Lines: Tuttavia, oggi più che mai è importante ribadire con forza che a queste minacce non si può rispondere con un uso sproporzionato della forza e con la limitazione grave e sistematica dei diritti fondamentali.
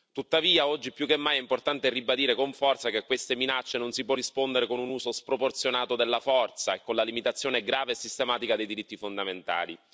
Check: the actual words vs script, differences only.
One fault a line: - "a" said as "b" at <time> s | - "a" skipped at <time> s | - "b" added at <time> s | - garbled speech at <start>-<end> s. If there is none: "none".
none